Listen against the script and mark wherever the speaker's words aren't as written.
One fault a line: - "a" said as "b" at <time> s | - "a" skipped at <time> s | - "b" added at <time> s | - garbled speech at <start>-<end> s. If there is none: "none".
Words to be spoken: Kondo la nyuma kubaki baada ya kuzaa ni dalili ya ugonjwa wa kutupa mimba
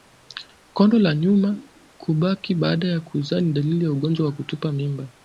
none